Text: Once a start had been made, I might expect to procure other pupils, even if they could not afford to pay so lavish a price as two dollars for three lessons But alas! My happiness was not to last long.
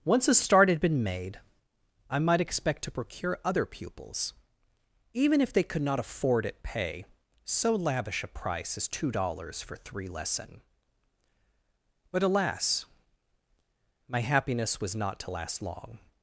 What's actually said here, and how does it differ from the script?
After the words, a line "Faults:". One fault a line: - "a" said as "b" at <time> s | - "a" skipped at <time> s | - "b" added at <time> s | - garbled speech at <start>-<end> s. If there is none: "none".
Once a start had been made, I might expect to procure other pupils, even if they could not afford at pay so lavish a price as two dollars for three lesson But alas! My happiness was not to last long.
Faults:
- "to" said as "at" at 6.5 s
- "lessons" said as "lesson" at 10.1 s